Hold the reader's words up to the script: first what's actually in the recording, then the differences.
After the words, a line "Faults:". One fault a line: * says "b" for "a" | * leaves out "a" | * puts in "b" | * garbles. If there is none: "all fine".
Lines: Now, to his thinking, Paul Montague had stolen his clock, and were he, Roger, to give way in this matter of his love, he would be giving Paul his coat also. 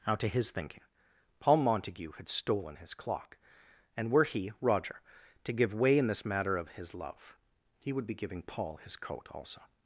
Now, to his thinking, Paul Montague had stolen his clock, and were he, Roger, to give way in this matter of his love, he would be giving Paul his coat also.
Faults:
all fine